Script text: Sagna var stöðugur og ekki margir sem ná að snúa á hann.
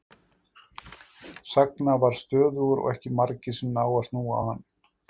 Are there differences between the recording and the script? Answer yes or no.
no